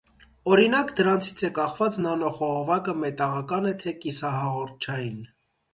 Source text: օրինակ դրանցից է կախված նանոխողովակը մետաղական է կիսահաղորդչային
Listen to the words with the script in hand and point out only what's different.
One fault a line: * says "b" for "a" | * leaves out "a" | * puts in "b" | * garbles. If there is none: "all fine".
* puts in "թե"